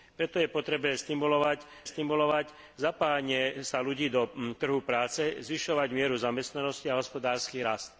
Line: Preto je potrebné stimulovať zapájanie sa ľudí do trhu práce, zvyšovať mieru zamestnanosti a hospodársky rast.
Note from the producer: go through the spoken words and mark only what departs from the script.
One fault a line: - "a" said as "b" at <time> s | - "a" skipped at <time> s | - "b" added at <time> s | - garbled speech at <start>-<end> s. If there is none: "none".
- "stimulovať" added at 1.8 s